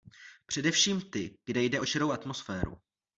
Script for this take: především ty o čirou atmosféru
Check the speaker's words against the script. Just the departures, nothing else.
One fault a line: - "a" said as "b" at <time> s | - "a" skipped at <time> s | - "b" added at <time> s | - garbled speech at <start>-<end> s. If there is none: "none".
- "kde jde" added at 1.4 s